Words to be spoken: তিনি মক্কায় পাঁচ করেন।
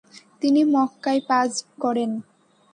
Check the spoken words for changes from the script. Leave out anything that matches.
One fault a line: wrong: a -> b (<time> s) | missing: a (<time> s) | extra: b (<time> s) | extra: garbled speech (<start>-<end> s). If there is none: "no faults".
no faults